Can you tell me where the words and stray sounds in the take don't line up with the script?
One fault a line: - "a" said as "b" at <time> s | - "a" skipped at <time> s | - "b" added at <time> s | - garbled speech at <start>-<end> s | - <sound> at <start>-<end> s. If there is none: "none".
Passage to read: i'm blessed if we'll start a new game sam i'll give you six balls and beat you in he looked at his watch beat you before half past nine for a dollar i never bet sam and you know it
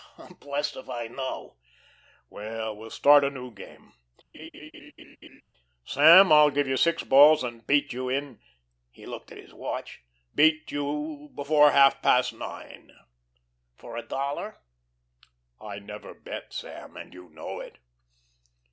- "i know well" added at 0.9 s
- laugh at 4.3-5.4 s